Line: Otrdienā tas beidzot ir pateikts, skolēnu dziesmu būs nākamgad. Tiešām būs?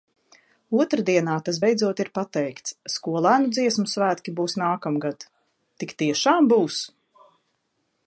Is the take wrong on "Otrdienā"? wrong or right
right